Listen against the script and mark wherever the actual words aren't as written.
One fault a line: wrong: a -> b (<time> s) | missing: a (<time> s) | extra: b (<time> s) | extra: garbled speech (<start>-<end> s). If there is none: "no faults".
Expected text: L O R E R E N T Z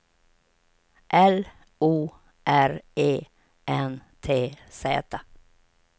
missing: R E (3.2 s)